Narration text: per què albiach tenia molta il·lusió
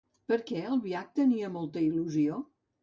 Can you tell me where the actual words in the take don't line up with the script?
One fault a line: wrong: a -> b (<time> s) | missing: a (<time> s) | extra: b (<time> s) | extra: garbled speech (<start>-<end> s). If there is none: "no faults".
no faults